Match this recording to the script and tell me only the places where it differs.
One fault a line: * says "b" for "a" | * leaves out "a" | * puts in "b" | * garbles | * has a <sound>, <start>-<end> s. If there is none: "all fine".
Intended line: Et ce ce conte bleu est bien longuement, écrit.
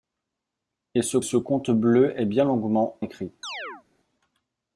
* has a chirp, 3.4-3.8 s